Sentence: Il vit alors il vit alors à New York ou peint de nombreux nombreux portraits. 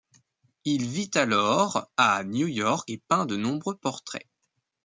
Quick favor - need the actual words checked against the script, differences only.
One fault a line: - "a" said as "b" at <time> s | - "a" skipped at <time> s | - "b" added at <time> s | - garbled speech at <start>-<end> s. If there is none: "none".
- "il vit alors" skipped at 1.9 s
- "ou" said as "et" at 2.9 s
- "nombreux" skipped at 3.8 s